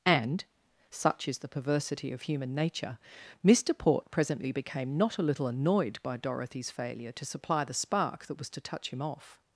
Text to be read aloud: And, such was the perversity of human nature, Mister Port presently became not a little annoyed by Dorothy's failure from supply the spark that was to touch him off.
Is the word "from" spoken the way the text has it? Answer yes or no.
no